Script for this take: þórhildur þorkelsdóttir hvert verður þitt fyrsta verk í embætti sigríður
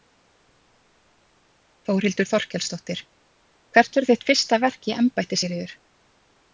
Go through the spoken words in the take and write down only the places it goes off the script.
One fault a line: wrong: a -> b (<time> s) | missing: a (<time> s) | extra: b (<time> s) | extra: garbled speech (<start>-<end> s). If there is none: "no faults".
no faults